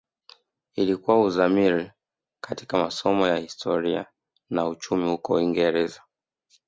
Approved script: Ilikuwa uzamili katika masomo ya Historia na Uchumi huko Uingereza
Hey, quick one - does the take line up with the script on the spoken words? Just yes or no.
yes